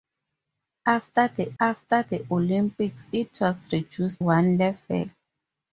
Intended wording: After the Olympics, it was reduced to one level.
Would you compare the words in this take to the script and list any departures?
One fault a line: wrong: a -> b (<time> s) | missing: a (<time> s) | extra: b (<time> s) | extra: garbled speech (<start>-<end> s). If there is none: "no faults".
extra: after the (1.6 s)
missing: to (4.2 s)